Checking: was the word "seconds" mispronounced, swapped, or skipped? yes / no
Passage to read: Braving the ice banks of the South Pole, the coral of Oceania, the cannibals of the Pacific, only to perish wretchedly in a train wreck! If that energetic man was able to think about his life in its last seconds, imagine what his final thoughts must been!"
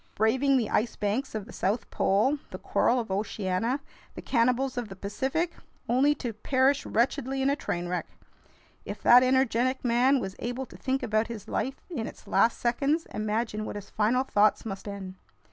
no